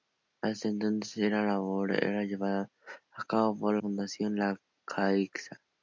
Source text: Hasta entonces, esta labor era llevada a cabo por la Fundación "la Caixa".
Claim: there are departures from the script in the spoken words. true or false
true